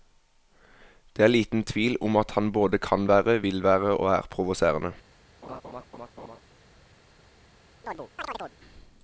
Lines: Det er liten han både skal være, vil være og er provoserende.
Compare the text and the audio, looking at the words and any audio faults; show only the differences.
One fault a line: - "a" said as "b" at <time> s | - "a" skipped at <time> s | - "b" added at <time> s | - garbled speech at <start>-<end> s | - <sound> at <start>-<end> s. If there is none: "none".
- "tvil om at" added at 1.7 s
- "skal" said as "kan" at 2.8 s
- laugh at 5.4-6.4 s
- chirp at 7.8-8.6 s